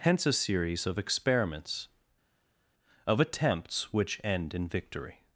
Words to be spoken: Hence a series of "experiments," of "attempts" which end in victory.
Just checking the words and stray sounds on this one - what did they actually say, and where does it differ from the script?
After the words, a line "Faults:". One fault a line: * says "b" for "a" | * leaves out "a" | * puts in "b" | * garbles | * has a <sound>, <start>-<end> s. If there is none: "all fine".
Hence a series of "experiments," of "attempts" which end in victory.
Faults:
all fine